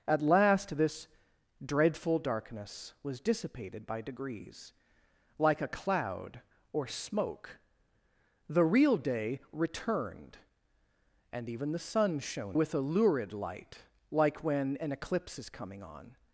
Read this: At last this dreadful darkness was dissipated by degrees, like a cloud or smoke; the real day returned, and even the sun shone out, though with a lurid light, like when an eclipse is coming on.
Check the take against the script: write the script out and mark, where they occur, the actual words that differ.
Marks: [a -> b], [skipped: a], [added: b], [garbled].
At last this dreadful darkness was dissipated by degrees, like a cloud or smoke; the real day returned, and even the sun shone [skipped: out, though] with a lurid light, like when an eclipse is coming on.